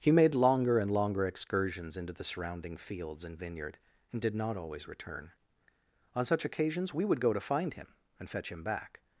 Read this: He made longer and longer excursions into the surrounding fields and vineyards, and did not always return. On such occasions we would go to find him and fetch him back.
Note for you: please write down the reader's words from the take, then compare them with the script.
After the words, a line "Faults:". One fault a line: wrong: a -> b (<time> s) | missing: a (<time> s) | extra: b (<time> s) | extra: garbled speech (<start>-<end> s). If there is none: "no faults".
He made longer and longer excursions into the surrounding fields and vineyard, and did not always return. On such occasions we would go to find him and fetch him back.
Faults:
wrong: vineyards -> vineyard (3.4 s)